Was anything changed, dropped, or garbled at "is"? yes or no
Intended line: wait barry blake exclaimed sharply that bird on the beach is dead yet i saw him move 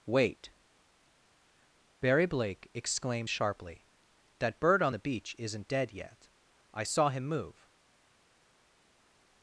yes